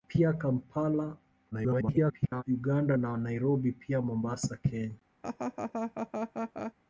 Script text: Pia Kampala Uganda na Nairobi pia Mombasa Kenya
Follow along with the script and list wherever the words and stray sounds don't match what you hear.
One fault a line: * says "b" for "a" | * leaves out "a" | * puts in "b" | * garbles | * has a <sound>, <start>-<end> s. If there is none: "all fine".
* garbles
* has a laugh, 5.2-6.7 s